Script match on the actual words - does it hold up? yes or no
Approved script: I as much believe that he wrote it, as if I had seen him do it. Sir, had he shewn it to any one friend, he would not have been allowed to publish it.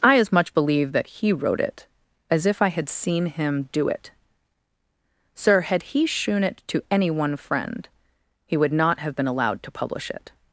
yes